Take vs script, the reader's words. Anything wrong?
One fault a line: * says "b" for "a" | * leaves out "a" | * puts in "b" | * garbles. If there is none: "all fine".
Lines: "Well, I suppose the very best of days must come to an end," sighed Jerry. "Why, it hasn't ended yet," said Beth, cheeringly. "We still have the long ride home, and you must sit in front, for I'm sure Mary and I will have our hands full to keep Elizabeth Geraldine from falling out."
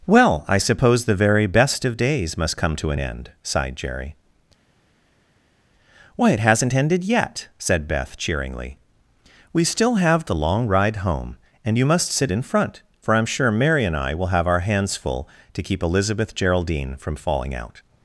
all fine